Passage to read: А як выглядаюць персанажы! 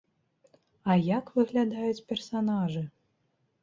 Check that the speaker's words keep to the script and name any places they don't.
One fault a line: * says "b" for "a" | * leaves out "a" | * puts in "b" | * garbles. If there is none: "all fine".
all fine